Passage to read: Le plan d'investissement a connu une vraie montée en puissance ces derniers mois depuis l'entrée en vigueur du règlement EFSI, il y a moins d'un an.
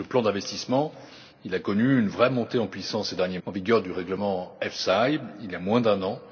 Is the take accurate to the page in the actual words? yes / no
no